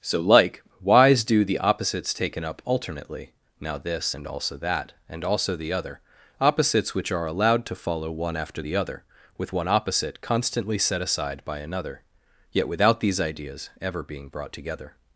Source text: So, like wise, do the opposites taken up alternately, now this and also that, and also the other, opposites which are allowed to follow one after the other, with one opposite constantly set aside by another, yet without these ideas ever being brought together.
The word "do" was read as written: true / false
true